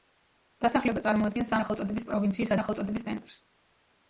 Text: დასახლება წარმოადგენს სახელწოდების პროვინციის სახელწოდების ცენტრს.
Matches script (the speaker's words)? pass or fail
pass